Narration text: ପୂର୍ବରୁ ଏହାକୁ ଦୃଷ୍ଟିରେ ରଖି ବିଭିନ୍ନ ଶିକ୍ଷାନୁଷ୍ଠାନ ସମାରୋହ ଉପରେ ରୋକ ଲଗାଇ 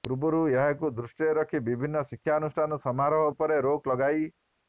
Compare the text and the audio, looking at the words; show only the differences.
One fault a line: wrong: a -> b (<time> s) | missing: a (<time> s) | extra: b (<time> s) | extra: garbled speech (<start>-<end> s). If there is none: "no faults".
no faults